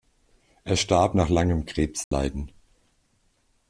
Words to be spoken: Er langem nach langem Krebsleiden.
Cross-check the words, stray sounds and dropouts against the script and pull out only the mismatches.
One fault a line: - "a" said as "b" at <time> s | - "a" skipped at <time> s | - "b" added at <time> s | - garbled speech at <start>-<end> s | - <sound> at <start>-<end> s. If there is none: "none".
- "langem" said as "starb" at 0.8 s
- dropout at 2.0-2.1 s